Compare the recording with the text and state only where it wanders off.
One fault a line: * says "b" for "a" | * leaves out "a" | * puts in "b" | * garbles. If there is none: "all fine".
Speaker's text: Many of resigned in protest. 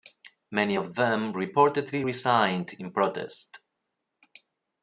* puts in "them reportedly"